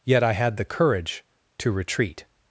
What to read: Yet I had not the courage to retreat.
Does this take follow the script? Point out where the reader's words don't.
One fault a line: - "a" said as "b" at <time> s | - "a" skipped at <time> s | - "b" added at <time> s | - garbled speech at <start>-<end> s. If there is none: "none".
- "not" skipped at 0.6 s